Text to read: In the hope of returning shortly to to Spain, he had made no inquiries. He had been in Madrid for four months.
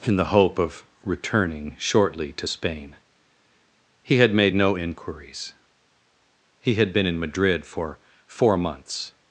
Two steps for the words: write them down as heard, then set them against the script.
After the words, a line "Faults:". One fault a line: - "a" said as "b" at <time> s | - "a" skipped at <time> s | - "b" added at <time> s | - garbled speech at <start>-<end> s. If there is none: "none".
In the hope of returning shortly to Spain, he had made no inquiries. He had been in Madrid for four months.
Faults:
- "to" skipped at 2.5 s